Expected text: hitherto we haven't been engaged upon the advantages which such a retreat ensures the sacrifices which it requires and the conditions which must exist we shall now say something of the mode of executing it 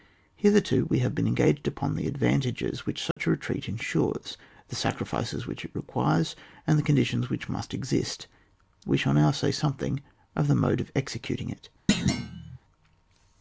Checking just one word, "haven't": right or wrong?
wrong